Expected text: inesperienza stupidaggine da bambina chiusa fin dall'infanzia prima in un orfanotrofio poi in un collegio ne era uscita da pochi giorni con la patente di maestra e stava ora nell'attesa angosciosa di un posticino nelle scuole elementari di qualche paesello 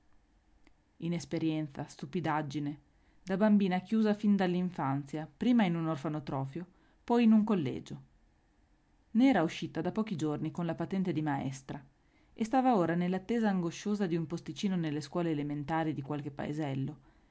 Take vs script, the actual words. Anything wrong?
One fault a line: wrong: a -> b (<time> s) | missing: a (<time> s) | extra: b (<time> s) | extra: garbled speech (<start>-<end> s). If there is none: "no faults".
no faults